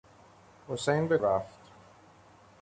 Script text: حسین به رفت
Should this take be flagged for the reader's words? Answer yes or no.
no